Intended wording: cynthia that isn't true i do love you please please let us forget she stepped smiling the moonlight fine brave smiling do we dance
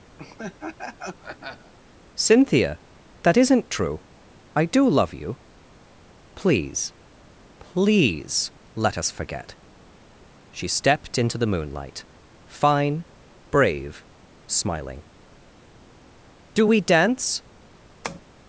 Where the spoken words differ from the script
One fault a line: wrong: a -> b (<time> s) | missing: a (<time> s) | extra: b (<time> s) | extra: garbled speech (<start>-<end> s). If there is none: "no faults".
wrong: smiling -> into (11.2 s)